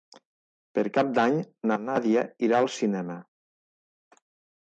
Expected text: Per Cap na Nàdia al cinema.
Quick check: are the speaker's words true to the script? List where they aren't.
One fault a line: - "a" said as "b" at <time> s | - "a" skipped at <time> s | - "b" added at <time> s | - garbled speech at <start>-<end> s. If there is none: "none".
- "d'Any" added at 1.2 s
- "irà" added at 2.5 s